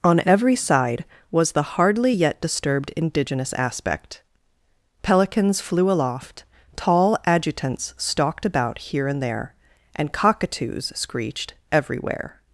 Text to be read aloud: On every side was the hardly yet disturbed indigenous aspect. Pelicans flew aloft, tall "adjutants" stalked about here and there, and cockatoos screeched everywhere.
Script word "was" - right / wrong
right